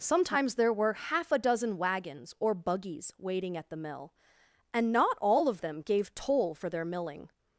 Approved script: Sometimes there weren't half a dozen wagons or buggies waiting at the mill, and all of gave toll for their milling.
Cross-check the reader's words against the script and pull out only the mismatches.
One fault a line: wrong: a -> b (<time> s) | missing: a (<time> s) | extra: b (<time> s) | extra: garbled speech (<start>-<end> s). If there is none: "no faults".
wrong: weren't -> were (0.7 s)
extra: not (4.9 s)
extra: them (5.6 s)